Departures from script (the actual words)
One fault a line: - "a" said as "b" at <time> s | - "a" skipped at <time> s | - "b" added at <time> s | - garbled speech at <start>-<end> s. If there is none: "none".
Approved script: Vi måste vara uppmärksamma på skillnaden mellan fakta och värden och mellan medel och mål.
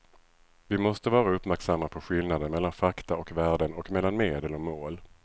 none